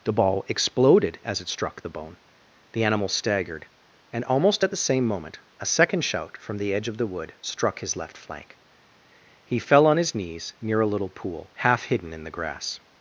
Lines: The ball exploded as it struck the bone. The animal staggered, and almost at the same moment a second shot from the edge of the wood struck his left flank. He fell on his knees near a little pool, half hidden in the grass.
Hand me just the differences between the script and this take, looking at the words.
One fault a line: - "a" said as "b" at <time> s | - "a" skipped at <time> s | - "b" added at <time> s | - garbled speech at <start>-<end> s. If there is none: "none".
- "shot" said as "shout" at 6.0 s